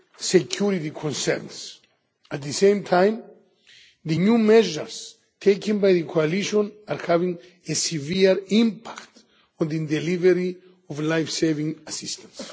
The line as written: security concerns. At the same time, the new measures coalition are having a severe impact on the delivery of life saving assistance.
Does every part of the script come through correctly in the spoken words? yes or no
no